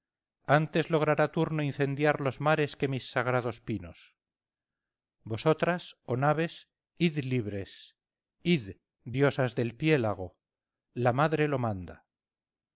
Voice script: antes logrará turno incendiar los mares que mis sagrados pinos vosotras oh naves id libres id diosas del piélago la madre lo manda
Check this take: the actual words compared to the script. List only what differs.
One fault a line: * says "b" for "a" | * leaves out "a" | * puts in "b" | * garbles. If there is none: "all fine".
all fine